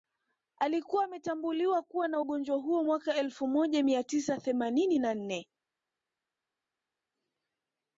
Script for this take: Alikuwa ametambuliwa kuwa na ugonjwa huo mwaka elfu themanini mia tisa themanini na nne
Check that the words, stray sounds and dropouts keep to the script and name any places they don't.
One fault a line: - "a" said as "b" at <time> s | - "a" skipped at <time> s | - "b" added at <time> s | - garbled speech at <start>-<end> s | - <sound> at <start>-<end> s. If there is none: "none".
- "themanini" said as "moja" at 3.5 s